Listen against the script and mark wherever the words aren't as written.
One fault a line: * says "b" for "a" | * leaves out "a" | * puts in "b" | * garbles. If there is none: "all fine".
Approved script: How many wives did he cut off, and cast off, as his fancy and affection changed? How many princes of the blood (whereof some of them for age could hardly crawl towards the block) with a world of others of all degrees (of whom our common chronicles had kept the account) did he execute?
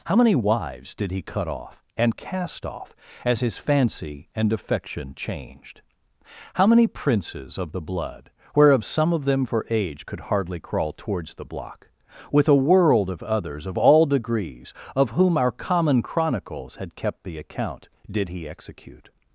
all fine